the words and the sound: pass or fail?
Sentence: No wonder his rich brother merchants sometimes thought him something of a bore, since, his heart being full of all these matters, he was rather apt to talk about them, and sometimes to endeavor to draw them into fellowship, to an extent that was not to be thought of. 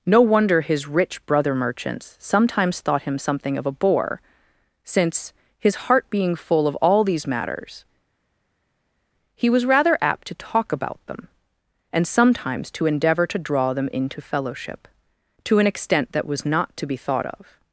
pass